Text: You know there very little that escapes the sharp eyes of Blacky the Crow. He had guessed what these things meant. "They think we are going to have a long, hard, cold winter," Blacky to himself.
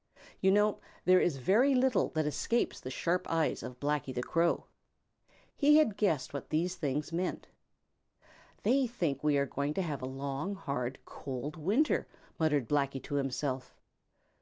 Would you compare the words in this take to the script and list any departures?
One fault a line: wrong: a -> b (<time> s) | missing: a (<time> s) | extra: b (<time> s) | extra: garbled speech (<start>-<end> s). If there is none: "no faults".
extra: is (1.2 s)
extra: muttered (12.4 s)